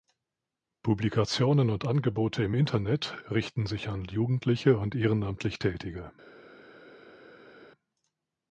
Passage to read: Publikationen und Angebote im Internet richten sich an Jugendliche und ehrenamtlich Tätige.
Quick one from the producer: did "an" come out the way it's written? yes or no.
yes